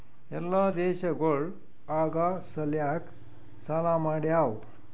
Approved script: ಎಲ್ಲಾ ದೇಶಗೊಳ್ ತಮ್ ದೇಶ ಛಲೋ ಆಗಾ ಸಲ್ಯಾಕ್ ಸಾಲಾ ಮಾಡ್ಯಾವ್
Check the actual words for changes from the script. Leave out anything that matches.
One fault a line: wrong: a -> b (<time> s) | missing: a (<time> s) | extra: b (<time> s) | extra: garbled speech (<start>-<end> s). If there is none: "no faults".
missing: ತಮ್ ದೇಶ ಛಲೋ (1.4 s)